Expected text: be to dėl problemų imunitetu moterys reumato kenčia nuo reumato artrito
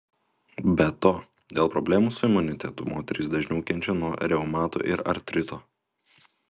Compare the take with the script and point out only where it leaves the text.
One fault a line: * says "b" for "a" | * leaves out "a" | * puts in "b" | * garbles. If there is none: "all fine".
* puts in "su"
* says "dažniau" for "reumato"
* puts in "ir"